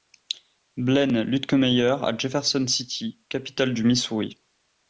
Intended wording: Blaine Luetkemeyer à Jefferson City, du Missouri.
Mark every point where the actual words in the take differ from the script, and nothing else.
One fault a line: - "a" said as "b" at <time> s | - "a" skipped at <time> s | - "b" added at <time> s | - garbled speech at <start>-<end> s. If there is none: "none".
- "capitale" added at 3.3 s